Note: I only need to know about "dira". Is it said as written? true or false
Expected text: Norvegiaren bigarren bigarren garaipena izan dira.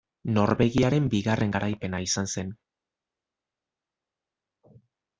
false